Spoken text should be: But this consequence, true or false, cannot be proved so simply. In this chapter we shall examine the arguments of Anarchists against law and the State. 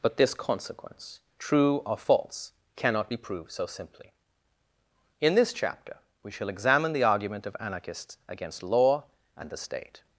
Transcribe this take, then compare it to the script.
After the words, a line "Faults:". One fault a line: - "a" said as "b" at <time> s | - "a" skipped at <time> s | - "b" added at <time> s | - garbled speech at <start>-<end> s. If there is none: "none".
But this consequence, true or false, cannot be proved so simply. In this chapter we shall examine the argument of Anarchists against law and the State.
Faults:
- "arguments" said as "argument" at 7.0 s